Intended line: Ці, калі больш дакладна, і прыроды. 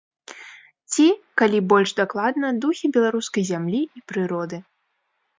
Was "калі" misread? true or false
false